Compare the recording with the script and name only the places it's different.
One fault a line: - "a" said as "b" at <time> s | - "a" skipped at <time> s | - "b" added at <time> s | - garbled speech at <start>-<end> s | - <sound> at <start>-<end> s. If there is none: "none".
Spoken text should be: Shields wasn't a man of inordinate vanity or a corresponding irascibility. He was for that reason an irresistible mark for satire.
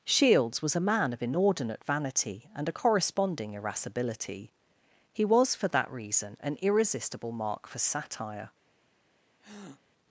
- "wasn't" said as "was" at 0.6 s
- "or" said as "and" at 2.5 s
- breath at 9.4-9.8 s